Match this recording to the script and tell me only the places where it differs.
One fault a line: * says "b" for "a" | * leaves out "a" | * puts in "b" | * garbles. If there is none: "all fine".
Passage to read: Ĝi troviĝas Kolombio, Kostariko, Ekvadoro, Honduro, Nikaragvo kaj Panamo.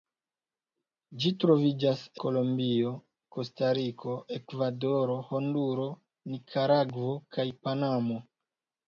all fine